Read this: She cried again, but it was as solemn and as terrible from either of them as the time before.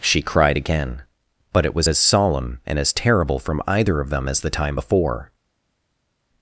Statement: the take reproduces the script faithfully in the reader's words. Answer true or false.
true